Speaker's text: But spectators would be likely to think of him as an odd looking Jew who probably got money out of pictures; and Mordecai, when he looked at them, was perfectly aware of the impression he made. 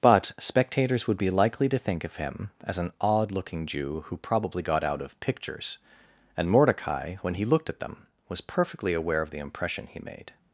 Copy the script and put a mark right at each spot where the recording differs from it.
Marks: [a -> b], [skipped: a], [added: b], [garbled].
But spectators would be likely to think of him as an odd looking Jew who probably got [skipped: money] out of pictures; and Mordecai, when he looked at them, was perfectly aware of the impression he made.